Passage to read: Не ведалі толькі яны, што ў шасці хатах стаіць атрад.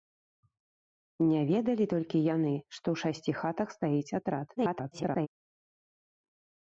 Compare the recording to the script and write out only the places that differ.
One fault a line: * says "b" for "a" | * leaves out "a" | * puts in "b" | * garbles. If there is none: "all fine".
* garbles